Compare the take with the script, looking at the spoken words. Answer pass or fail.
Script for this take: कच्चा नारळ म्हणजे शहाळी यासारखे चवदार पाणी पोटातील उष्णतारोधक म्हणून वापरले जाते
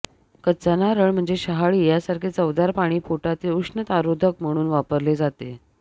pass